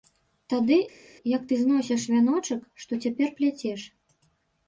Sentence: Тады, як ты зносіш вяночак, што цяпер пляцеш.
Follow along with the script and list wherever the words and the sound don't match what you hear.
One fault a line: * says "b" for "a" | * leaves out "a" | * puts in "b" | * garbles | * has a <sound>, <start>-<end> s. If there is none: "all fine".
all fine